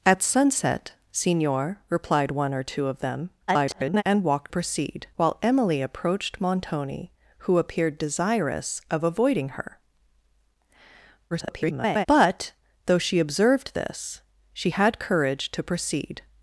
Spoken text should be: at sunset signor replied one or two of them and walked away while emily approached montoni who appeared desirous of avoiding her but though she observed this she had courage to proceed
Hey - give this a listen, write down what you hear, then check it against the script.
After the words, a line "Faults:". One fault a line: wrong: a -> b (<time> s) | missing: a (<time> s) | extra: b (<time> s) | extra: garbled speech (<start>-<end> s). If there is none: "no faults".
at sunset signor replied one or two of them [garbled] and walked proceed while emily approached montoni who appeared desirous of avoiding her [garbled] but though she observed this she had courage to proceed
Faults:
extra: garbled speech (3.5-4.0 s)
wrong: away -> proceed (4.5 s)
extra: garbled speech (11.3-12.1 s)